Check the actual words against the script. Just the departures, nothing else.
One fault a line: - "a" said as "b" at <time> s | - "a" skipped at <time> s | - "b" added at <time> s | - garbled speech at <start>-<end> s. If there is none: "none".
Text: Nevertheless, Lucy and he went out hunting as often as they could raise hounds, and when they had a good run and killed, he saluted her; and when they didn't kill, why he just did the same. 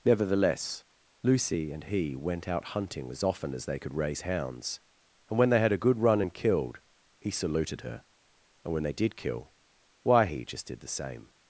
- "didn't" said as "did" at 8.9 s